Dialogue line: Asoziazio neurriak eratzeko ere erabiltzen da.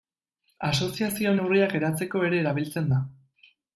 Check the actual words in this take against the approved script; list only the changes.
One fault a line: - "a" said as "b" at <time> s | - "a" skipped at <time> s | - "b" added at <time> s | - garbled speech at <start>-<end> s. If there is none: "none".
none